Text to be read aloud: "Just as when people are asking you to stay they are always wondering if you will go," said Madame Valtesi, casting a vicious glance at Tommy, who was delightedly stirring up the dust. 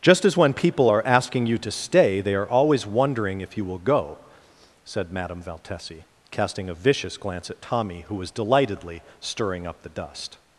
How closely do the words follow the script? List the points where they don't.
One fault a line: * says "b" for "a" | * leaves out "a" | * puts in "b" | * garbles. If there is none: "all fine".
all fine